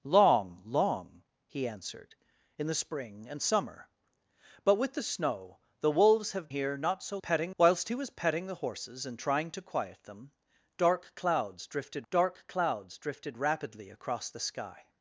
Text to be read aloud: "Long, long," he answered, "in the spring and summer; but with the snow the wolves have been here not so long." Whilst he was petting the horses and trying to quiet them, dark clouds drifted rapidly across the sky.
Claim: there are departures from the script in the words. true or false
true